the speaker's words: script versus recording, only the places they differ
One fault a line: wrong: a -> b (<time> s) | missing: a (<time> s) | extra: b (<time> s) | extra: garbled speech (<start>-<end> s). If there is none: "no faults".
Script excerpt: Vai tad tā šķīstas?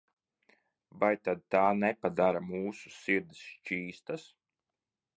extra: nepadara mūsu sirdis (1.8 s)